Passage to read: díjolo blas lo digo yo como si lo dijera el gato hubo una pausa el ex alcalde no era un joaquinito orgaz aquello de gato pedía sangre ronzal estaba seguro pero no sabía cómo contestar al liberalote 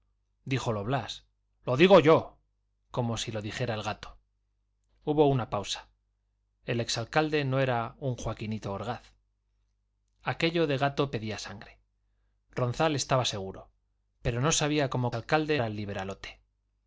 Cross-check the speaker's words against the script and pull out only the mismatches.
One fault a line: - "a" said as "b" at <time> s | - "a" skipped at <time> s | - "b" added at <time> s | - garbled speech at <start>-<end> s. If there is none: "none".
- "contestar" said as "alcalde" at 15.1 s